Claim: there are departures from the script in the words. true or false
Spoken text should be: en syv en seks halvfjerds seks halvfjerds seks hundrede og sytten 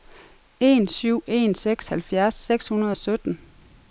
true